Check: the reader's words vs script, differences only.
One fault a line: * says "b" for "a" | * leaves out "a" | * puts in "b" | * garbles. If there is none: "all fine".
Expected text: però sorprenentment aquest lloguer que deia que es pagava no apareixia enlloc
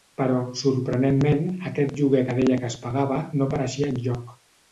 all fine